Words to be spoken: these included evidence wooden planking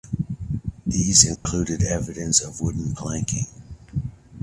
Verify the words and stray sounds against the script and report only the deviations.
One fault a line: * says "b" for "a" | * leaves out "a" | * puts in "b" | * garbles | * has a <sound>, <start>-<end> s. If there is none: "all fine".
* has a dropout, 1.4-1.5 s
* puts in "of"